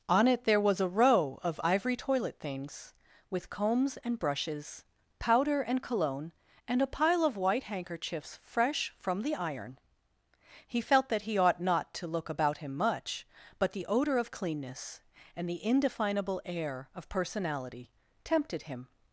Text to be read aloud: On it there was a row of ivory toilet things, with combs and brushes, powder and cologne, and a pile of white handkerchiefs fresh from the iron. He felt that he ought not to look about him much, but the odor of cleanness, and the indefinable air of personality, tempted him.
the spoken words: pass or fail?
pass